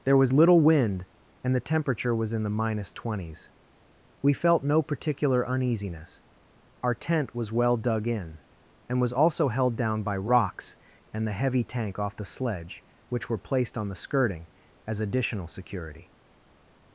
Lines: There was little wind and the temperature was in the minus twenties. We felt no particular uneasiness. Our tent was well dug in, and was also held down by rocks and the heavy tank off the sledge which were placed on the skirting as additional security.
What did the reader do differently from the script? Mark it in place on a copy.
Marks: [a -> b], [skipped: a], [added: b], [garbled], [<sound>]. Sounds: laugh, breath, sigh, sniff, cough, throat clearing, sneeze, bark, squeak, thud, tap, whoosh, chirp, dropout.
There was little wind and the temperature was in the minus twenties. We felt no particular uneasiness. Our tent was well dug in, and was also held down by rocks and the heavy tank off the sledge which were placed on the skirting as additional security.